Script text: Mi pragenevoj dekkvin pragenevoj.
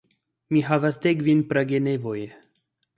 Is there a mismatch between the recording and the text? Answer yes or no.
yes